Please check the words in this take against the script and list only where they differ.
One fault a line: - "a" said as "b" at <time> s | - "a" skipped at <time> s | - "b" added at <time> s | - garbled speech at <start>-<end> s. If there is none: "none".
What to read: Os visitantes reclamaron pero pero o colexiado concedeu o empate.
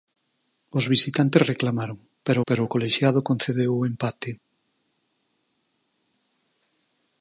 none